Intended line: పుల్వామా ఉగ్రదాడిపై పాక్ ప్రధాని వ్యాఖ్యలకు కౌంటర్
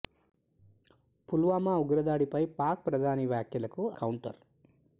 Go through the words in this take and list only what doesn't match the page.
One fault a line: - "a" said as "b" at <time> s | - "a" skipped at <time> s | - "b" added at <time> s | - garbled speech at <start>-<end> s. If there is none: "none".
none